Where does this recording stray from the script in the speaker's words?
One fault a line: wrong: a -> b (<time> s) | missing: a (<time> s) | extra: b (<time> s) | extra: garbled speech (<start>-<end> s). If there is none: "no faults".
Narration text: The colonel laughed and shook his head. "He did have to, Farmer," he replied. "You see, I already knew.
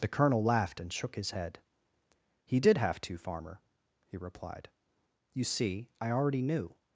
no faults